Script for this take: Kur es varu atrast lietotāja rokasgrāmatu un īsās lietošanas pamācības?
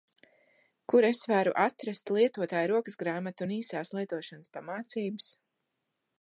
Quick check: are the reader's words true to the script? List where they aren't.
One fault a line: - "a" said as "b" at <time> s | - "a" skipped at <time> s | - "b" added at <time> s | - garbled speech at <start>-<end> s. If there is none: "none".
none